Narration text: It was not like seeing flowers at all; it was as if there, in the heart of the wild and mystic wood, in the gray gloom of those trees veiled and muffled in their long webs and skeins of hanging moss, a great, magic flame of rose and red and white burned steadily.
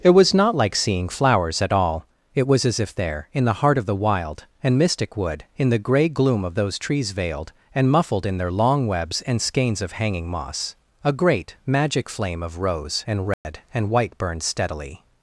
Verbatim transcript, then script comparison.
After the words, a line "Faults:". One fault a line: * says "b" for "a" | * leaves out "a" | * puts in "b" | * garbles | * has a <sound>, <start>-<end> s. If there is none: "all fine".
It was not like seeing flowers at all; it was as if there, in the heart of the wild and mystic wood, in the gray gloom of those trees veiled and muffled in their long webs and skeins of hanging moss, a great, magic flame of rose and red and white burned steadily.
Faults:
* has a dropout, 13.3-13.4 s